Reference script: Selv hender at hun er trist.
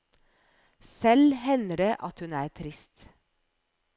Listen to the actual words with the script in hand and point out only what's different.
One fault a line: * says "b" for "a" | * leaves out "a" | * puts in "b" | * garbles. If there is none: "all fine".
* puts in "det"